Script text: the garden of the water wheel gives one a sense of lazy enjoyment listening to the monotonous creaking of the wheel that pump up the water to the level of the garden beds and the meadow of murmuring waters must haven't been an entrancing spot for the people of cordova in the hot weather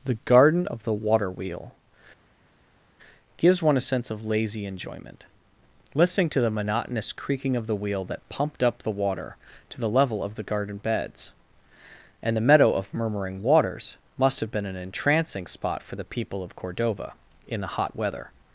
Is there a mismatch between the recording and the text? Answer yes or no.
yes